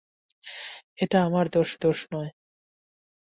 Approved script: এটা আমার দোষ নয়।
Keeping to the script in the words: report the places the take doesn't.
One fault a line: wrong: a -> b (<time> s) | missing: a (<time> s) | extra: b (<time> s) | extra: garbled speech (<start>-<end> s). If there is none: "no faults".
extra: দোষ (1.8 s)